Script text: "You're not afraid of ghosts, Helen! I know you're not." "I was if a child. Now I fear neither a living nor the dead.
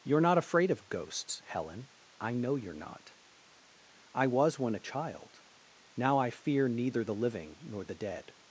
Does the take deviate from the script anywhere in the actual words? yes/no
yes